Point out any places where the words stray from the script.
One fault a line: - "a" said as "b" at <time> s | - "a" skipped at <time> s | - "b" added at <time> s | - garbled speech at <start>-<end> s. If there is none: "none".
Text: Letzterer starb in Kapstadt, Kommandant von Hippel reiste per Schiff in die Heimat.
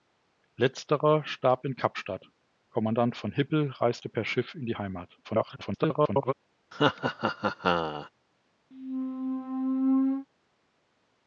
- garbled speech at 5.2-6.3 s